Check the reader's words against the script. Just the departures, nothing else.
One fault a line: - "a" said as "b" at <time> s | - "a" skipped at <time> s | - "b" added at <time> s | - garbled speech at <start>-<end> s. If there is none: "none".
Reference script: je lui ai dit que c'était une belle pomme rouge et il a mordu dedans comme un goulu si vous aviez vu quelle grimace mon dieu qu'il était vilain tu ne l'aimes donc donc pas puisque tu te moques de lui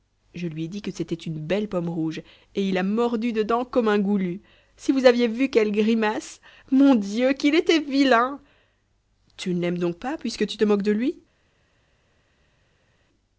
- "donc" skipped at 10.0 s